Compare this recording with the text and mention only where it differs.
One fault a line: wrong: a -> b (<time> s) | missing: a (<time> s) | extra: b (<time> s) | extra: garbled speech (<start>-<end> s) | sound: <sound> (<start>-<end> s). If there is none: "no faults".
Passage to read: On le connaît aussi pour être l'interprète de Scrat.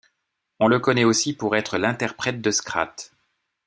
no faults